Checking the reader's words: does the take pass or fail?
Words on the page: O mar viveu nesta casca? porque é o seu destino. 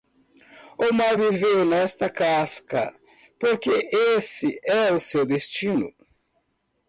fail